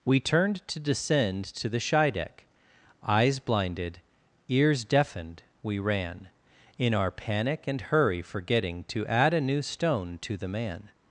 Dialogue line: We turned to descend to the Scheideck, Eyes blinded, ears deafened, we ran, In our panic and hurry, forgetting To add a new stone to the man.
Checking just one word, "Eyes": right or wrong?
right